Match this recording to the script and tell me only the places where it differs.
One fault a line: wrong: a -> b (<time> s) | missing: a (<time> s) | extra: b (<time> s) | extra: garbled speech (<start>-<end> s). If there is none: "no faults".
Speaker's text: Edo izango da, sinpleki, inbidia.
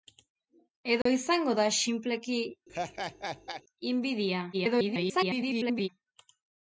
extra: garbled speech (4.5-5.9 s)